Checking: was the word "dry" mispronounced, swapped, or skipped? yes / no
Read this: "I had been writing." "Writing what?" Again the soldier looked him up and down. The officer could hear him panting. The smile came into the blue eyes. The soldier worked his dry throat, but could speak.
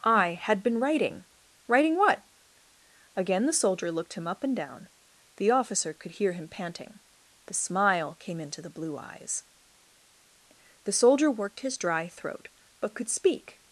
no